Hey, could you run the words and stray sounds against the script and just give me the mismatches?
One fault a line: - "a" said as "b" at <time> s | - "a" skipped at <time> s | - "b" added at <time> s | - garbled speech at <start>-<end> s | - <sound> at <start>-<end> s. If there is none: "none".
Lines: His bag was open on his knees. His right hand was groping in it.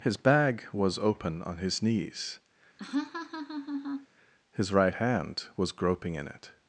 - laugh at 2.8-4.1 s